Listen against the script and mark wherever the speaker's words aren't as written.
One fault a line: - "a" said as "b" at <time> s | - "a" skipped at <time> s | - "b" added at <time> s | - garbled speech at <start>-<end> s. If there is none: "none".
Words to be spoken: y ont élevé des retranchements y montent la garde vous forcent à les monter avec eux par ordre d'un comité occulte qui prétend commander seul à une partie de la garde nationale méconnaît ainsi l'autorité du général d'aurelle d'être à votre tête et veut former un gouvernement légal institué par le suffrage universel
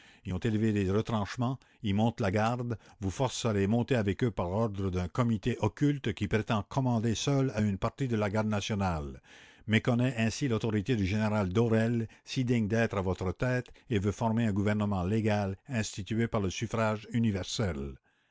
- "si digne" added at 12.2 s